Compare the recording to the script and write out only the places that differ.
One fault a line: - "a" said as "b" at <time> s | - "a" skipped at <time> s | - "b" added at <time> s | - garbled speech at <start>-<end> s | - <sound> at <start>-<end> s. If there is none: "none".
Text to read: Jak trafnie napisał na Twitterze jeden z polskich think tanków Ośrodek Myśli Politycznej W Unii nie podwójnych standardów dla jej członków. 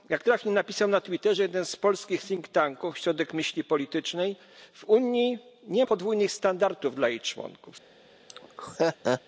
- laugh at 8.3-9.2 s